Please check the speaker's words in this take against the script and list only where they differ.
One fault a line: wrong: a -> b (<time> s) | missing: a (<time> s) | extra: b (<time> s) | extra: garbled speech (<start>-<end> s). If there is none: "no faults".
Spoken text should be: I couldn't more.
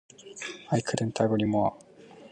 extra: agree (1.2 s)